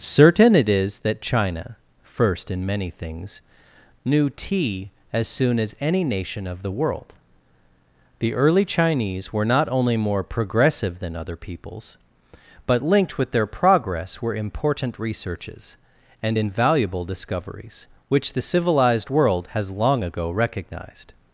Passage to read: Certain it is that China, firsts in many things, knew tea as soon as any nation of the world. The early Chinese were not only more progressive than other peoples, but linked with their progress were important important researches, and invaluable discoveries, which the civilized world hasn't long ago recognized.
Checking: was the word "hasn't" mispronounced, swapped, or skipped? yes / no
yes